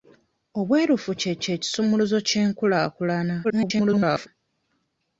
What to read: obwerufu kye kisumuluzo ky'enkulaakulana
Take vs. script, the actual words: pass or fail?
fail